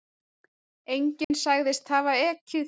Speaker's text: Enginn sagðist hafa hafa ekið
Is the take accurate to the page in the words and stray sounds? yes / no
no